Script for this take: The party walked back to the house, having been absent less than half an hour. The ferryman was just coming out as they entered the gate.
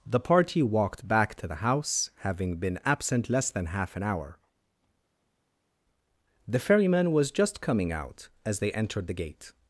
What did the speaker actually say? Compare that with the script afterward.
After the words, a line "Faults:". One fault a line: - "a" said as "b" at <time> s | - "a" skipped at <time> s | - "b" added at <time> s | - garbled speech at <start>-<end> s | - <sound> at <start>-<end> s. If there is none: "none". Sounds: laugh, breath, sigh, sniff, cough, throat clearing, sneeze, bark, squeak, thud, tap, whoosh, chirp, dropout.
The party walked back to the house, having been absent less than half an hour. The ferryman was just coming out as they entered the gate.
Faults:
none